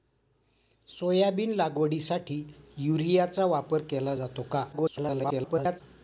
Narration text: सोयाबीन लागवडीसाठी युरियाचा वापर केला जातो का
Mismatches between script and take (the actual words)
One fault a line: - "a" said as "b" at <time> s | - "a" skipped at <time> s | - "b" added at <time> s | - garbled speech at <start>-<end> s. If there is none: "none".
- garbled speech at 4.7-5.8 s